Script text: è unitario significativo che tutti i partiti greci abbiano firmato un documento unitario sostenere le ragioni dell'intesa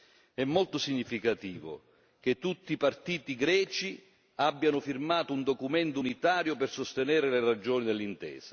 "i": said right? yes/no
yes